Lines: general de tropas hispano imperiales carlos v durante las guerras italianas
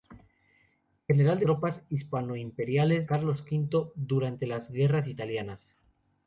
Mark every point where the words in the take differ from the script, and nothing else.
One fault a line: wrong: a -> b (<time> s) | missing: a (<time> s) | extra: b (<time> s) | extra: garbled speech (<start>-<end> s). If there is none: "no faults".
no faults